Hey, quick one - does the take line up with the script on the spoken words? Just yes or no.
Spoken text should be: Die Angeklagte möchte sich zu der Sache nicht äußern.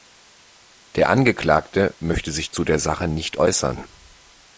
no